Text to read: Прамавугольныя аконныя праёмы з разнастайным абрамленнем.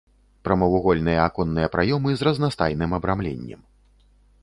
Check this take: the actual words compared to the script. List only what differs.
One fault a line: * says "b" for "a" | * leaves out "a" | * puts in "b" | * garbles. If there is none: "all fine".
all fine